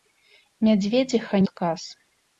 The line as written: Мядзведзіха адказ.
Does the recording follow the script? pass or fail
pass